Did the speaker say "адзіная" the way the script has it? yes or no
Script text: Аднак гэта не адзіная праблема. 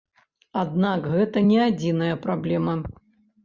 yes